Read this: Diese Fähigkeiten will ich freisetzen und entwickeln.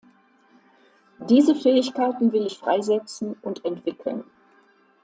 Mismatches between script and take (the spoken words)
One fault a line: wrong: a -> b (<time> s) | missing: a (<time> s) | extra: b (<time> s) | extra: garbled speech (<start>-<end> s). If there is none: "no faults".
no faults